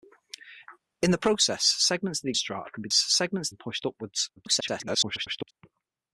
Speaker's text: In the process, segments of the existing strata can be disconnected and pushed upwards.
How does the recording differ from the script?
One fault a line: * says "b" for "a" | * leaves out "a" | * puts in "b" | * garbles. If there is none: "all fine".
* leaves out "existing"
* says "segments" for "disconnected"
* garbles